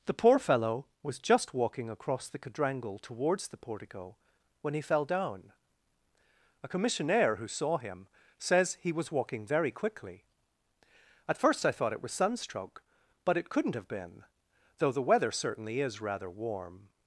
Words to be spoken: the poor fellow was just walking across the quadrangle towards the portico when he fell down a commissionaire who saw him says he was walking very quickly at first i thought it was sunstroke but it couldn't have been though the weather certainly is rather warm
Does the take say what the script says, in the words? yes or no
yes